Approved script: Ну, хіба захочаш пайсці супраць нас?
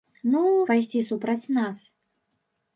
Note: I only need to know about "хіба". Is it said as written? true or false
false